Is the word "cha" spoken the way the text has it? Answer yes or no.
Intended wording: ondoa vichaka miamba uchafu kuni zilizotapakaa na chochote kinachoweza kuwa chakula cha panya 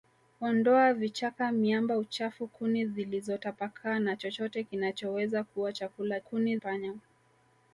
no